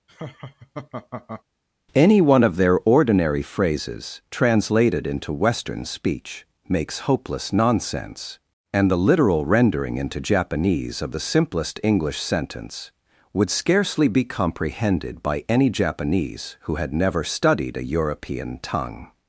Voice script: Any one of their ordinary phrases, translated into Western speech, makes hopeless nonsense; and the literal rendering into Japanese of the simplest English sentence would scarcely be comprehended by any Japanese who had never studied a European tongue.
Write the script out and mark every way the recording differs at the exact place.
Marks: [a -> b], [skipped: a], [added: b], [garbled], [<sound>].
[laugh] Any one of their ordinary phrases, translated into Western speech, makes hopeless nonsense; and the literal rendering into Japanese of the simplest English sentence would scarcely be comprehended by any Japanese who had never studied a European tongue.